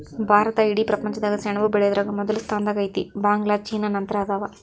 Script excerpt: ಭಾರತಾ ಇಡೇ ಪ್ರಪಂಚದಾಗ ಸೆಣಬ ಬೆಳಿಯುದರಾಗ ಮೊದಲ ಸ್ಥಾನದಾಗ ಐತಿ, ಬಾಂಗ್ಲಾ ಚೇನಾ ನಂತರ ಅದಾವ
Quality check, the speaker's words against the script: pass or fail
pass